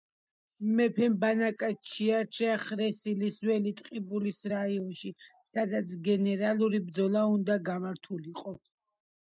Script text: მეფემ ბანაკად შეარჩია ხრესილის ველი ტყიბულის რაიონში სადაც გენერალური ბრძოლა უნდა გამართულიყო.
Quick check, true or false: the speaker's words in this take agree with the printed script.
true